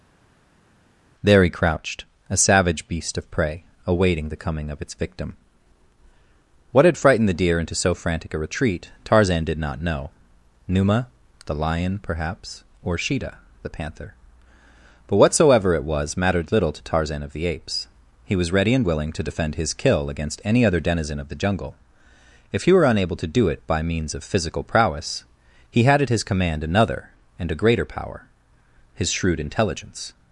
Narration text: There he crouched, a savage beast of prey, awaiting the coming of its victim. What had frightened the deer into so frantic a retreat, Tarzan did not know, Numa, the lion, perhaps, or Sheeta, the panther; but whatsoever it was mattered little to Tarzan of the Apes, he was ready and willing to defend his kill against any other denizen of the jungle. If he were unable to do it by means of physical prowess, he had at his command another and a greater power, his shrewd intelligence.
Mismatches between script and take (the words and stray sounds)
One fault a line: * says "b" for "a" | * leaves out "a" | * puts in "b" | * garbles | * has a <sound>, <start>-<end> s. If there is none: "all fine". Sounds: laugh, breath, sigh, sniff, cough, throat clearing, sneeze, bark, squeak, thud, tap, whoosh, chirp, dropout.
all fine